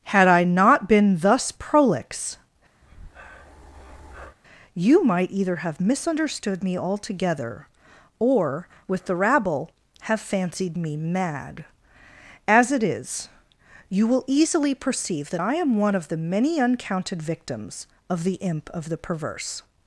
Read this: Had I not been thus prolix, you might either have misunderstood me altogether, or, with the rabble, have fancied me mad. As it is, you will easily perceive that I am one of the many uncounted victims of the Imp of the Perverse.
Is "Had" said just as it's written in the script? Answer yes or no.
yes